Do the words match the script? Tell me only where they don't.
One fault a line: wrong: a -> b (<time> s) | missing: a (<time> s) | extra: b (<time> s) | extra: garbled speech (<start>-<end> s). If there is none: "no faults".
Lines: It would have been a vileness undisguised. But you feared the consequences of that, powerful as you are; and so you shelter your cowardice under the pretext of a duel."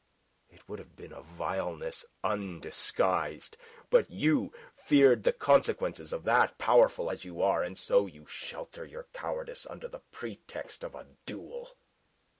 no faults